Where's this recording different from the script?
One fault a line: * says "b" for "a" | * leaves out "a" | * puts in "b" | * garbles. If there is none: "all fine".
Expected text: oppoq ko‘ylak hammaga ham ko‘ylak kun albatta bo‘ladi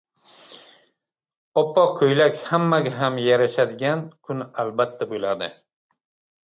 * says "yarashadigan" for "ko‘ylak"